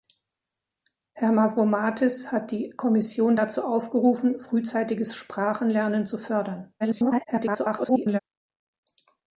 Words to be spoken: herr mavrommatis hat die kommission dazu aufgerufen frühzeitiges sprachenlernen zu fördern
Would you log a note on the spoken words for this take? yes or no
yes